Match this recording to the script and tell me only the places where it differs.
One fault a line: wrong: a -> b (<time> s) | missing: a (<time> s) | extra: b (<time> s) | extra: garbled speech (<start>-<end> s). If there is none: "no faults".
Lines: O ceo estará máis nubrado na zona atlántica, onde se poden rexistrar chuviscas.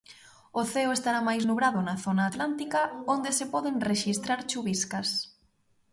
no faults